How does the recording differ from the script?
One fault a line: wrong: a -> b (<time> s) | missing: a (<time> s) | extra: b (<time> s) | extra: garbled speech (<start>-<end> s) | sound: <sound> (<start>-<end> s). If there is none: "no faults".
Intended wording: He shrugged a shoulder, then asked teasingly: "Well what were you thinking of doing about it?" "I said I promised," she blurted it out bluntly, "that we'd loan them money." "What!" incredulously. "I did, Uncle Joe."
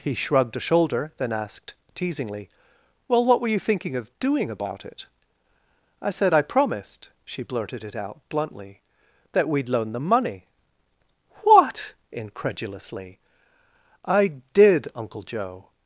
no faults